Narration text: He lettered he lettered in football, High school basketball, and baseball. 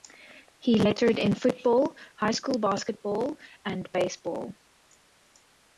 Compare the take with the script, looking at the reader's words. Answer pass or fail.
fail